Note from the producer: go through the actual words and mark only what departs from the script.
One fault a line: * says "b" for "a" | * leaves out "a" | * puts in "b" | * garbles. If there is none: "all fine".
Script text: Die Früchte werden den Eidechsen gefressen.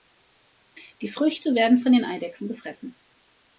* puts in "von"